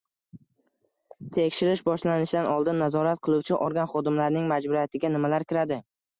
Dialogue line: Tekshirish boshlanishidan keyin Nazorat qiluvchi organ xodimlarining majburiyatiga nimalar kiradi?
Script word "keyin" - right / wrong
wrong